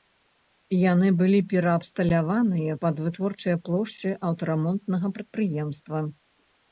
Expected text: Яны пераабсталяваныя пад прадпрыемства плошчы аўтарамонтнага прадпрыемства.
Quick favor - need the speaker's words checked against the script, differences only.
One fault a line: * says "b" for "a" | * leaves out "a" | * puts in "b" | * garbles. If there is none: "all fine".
* puts in "былі"
* says "вытворчыя" for "прадпрыемства"